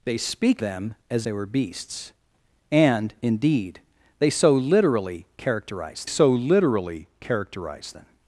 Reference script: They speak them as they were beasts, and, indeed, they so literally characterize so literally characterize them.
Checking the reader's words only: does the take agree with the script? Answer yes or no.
yes